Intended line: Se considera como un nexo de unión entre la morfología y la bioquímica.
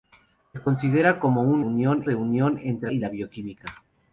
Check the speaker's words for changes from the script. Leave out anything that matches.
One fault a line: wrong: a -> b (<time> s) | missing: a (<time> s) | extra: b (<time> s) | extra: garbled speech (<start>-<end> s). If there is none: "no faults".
wrong: nexo -> unión (1.6 s)
missing: la morfología (2.9 s)